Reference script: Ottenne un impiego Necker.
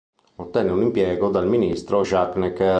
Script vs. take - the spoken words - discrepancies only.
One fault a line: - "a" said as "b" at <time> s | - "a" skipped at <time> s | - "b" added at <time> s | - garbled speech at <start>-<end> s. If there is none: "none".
- "dal ministro Jacques" added at 1.3 s